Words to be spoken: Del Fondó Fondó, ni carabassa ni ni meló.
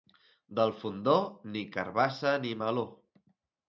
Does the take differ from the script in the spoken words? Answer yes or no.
yes